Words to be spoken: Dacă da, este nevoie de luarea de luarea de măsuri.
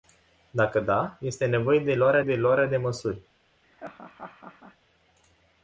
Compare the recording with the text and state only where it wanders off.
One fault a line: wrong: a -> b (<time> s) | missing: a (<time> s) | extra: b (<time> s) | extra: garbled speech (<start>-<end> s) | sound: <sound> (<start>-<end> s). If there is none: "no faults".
sound: laugh (3.6-4.8 s)